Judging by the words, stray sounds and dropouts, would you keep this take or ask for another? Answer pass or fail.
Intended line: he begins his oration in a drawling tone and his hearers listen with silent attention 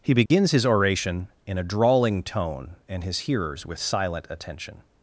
fail